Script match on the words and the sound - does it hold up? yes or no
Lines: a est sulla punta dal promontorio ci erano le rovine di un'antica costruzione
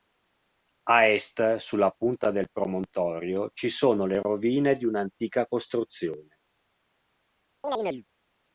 no